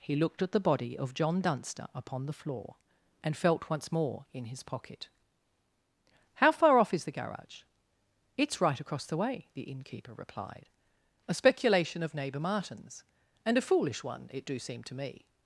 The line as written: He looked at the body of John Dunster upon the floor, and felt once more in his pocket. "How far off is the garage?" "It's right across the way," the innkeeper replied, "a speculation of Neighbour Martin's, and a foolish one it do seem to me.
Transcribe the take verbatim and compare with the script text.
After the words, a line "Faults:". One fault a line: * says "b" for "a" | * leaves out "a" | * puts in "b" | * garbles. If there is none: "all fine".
He looked at the body of John Dunster upon the floor, and felt once more in his pocket. "How far off is the garage?" "It's right across the way," the innkeeper replied, "a speculation of Neighbour Martin's, and a foolish one it do seem to me.
Faults:
all fine